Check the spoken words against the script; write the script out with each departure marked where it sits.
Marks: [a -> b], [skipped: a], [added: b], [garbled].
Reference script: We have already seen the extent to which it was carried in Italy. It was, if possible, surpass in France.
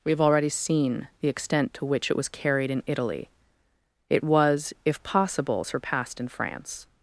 We have already seen the extent to which it was carried in Italy. It was, if possible, [surpass -> surpassed] in France.